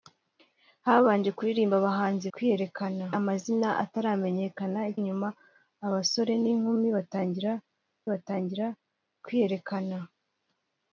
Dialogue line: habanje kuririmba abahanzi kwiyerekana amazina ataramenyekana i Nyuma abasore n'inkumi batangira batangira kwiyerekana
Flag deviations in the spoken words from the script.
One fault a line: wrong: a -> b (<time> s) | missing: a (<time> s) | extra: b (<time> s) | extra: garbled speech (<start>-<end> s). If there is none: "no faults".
no faults